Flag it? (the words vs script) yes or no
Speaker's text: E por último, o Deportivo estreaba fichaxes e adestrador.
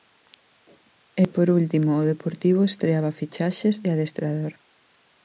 no